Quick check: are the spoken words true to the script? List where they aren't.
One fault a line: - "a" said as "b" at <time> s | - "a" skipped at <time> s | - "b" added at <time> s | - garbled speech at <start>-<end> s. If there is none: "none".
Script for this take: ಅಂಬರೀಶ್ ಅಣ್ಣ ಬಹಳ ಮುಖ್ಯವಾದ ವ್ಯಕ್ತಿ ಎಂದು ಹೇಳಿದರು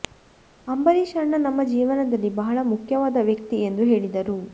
- "ನಮ್ಮ ಜೀವನದಲ್ಲಿ" added at 1.4 s